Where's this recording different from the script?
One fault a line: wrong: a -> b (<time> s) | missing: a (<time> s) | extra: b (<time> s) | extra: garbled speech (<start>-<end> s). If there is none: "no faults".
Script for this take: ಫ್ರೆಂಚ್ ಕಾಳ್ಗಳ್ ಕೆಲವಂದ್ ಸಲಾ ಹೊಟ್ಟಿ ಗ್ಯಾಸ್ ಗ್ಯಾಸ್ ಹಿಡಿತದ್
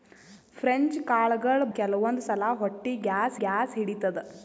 no faults